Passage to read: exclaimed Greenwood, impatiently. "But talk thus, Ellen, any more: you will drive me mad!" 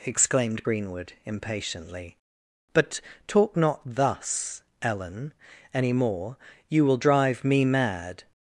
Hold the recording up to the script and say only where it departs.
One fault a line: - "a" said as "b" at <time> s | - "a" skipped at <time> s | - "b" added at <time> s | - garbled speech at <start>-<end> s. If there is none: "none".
- "not" added at 3.6 s